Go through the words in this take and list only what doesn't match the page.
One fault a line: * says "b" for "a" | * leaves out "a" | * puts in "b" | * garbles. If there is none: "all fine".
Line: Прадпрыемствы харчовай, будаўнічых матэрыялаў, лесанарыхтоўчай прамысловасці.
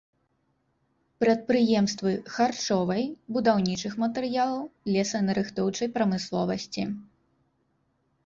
all fine